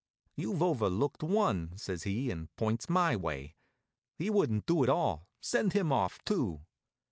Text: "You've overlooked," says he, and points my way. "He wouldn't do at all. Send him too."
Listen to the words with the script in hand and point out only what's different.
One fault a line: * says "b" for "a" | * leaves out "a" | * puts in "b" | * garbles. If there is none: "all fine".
* puts in "one"
* puts in "off"